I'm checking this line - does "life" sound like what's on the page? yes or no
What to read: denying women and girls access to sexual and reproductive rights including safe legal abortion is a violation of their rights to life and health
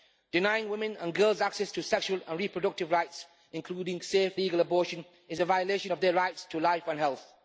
yes